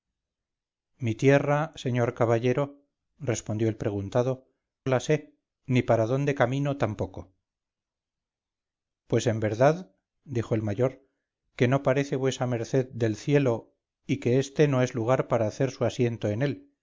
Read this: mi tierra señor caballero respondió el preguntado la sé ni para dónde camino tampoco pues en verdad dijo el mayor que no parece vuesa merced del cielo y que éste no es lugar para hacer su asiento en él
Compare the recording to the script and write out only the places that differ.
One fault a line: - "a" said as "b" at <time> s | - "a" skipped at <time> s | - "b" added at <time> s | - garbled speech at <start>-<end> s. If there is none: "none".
none